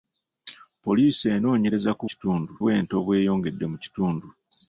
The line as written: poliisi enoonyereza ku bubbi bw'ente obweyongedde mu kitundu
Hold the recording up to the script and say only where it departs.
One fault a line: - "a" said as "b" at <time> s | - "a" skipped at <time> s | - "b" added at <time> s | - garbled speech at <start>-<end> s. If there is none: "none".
- "bubbi" said as "kitundu" at 2.1 s